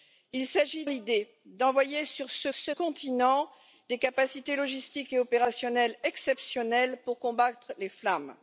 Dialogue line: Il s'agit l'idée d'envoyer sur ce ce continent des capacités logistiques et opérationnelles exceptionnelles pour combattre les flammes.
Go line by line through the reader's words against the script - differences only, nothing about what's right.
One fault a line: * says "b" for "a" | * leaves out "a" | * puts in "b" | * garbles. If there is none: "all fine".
all fine